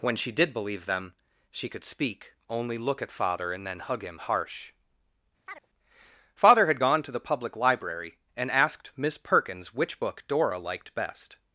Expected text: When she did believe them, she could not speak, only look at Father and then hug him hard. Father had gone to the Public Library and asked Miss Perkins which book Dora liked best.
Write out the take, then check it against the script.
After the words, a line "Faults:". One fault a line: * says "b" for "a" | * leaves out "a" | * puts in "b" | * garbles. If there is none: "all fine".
When she did believe them, she could speak, only look at Father and then hug him harsh. Father had gone to the Public Library and asked Miss Perkins which book Dora liked best.
Faults:
* leaves out "not"
* says "harsh" for "hard"